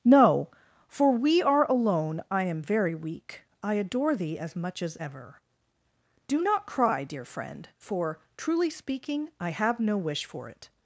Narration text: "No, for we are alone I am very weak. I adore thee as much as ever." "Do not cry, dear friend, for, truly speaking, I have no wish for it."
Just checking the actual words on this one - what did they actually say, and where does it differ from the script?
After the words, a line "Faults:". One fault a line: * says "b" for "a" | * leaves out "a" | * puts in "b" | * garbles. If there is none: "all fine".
"No, for we are alone I am very weak. I adore thee as much as ever." "Do not cry, dear friend, for, truly speaking, I have no wish for it."
Faults:
all fine